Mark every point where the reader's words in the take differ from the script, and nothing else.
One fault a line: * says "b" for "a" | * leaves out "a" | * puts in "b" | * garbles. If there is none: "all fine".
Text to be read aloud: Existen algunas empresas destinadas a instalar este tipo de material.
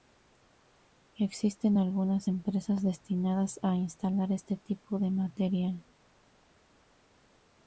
all fine